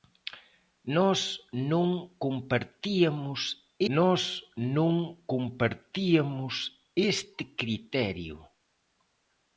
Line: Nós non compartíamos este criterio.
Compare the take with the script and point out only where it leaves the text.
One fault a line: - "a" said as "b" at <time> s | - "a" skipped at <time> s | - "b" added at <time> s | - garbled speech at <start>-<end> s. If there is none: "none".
- "nós non compartíamos" added at 4.0 s